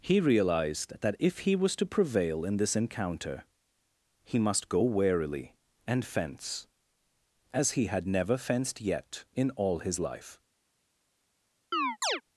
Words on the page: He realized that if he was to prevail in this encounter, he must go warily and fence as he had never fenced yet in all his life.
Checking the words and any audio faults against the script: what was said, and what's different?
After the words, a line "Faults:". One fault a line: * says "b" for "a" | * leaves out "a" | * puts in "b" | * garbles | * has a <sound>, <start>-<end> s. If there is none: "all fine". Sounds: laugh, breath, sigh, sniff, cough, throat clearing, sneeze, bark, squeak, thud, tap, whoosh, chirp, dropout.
He realized that if he was to prevail in this encounter, he must go warily and fence as he had never fenced yet in all his life.
Faults:
* has a chirp, 11.7-12.2 s